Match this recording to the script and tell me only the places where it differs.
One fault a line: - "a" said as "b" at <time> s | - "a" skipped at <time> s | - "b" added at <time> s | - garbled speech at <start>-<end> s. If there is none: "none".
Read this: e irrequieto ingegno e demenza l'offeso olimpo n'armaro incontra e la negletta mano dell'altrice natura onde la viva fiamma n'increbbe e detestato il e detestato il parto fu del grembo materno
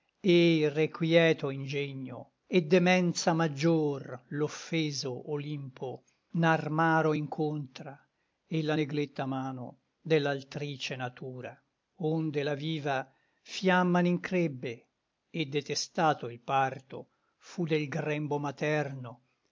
- "maggior" added at 3.3 s
- "e detestato il" skipped at 16.4 s